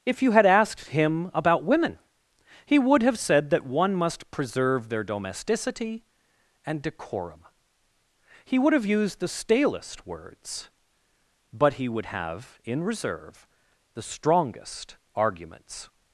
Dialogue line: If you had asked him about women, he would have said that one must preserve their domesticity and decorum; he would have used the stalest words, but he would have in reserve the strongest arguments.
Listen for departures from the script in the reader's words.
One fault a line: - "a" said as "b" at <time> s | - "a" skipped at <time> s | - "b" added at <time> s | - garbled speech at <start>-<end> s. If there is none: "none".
none